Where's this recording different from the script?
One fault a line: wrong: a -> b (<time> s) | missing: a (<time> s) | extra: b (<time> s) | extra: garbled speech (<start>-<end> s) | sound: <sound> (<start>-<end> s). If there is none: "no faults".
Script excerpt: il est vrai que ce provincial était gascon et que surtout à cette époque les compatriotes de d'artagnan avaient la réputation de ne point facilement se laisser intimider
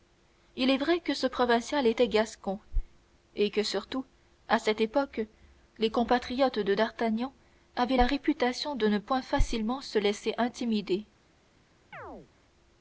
sound: chirp (11.9-12.3 s)